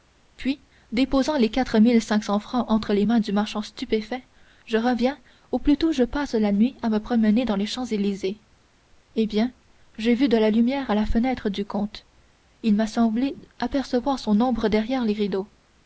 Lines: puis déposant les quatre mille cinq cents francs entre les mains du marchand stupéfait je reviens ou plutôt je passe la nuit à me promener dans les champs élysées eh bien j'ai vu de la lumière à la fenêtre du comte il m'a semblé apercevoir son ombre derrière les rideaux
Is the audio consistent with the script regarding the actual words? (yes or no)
yes